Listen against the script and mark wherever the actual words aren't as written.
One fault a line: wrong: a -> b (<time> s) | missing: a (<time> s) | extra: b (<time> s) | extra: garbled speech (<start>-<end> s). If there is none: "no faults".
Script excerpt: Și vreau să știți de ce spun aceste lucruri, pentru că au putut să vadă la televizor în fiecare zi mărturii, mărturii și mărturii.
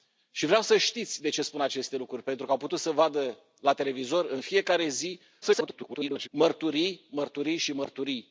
extra: garbled speech (5.4-6.3 s)